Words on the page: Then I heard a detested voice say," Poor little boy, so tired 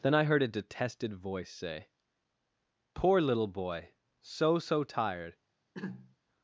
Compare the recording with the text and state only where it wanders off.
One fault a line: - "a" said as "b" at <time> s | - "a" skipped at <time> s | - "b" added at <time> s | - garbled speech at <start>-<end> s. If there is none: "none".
- "so" added at 4.6 s